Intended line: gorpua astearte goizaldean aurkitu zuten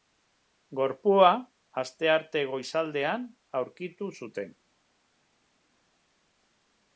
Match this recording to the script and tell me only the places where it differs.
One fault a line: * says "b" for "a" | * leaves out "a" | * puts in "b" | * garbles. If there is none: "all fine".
all fine